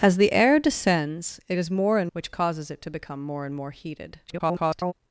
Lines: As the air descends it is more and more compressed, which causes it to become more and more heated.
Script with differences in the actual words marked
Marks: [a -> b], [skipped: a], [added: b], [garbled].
As the air descends it is more and [skipped: more compressed,] which causes it to become more and more heated. [garbled]